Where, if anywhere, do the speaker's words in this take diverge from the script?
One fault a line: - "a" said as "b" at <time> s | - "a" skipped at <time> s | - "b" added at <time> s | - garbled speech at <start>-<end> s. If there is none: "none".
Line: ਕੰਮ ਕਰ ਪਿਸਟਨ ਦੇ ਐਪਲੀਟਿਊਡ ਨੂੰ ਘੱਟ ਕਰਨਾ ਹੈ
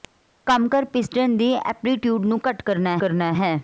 - "ਕਰਨਾ" added at 3.0 s